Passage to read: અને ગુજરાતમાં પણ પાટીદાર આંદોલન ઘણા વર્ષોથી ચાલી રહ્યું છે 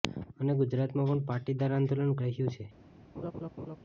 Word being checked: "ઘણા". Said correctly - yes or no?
no